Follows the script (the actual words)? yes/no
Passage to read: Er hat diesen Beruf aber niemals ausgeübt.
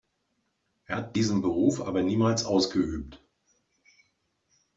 yes